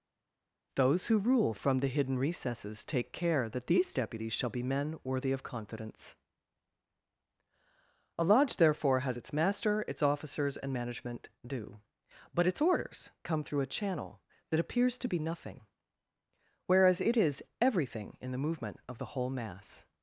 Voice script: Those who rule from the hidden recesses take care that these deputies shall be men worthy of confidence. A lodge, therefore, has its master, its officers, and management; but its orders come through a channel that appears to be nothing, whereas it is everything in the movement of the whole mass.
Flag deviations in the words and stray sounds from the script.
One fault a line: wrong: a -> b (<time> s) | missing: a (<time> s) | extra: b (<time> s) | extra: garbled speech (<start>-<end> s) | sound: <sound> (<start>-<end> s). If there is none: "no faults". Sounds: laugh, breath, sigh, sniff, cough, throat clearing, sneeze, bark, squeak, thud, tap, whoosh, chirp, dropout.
extra: due (11.5 s)